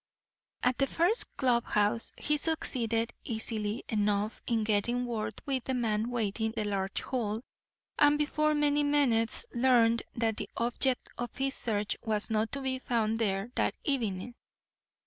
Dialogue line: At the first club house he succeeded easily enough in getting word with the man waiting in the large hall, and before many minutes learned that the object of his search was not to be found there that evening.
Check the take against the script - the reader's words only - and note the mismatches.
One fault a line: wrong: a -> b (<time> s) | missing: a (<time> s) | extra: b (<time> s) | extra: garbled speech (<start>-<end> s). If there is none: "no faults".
missing: in (6.5 s)